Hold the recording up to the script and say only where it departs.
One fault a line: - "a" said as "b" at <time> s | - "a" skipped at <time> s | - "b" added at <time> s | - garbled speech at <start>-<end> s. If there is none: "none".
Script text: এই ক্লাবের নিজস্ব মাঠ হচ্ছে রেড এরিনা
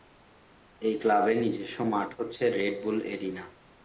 - "বুল" added at 2.8 s